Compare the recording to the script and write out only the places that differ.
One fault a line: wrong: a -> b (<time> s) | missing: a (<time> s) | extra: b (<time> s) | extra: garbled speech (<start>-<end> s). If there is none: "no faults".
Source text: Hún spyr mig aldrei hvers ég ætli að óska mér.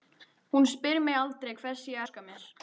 missing: ætli að (2.0 s)